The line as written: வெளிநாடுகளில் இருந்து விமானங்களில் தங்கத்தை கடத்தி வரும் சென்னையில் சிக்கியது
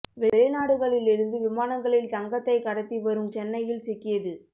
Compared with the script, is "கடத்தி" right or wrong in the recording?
right